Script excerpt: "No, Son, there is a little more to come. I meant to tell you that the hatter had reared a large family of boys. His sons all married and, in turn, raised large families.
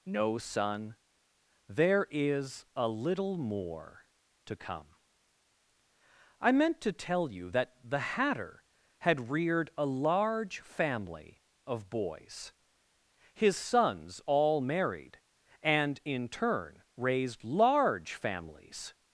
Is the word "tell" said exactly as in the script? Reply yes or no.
yes